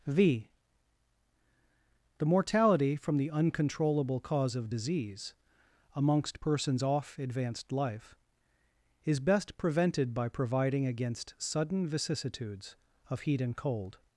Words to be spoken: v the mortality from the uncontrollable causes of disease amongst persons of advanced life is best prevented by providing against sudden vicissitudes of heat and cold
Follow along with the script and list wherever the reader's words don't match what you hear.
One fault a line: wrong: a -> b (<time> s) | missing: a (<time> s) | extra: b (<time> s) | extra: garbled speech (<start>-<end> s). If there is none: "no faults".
wrong: causes -> cause (4.2 s)
wrong: of -> off (6.8 s)